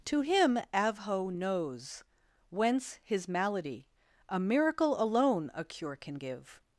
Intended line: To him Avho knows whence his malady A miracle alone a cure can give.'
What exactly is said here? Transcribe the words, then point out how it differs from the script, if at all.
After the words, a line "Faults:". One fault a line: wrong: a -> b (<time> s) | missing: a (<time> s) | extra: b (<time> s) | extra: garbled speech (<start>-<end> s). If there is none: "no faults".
To him Avho knows whence his malady A miracle alone a cure can give.'
Faults:
no faults